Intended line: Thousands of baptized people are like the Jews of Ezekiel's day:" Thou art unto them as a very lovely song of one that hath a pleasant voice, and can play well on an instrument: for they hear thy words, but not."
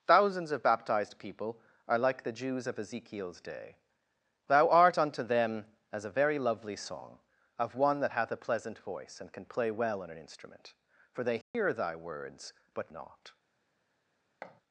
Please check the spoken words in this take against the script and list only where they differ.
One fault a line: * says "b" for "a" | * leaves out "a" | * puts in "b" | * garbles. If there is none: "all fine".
all fine